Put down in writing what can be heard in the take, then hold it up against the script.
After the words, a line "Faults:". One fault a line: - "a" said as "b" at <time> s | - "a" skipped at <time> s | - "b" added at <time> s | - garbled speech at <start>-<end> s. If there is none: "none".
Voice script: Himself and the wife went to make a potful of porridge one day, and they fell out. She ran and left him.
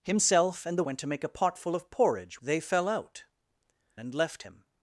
Himself and the went to make a potful of porridge they fell out. And left him.
Faults:
- "wife" skipped at 0.9 s
- "one day and" skipped at 2.4 s
- "She ran" skipped at 3.2 s